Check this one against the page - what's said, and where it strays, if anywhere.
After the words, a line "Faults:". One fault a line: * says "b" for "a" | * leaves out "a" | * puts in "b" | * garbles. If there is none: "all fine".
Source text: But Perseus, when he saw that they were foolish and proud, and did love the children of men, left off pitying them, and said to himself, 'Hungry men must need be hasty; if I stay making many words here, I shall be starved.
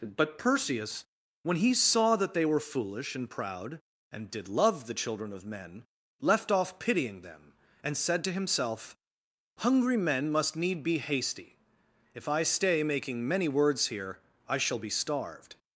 But Perseus, when he saw that they were foolish and proud, and did love the children of men, left off pitying them, and said to himself, 'Hungry men must need be hasty; if I stay making many words here, I shall be starved.
Faults:
all fine